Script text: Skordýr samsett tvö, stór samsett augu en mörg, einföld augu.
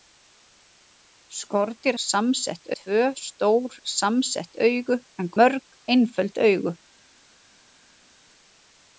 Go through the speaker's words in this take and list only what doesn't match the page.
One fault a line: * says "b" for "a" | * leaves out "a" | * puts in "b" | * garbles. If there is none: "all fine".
all fine